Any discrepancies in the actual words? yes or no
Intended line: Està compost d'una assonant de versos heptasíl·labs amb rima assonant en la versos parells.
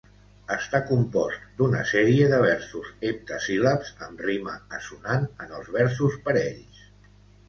yes